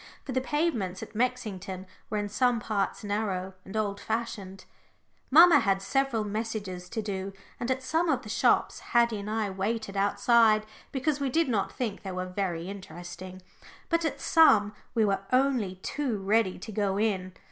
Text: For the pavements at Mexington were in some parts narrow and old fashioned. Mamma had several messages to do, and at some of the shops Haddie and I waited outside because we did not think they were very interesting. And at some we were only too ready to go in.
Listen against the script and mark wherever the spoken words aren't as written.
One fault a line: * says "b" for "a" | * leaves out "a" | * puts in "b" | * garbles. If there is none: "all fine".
* says "But" for "And"